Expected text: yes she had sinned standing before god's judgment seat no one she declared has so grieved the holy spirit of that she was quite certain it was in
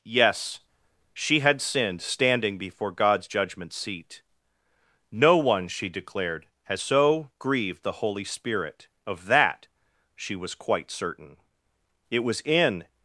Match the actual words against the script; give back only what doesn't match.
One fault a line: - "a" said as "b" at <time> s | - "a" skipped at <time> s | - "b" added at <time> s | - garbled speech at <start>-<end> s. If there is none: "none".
none